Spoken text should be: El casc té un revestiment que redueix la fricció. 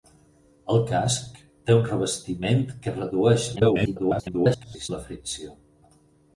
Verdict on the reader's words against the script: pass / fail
fail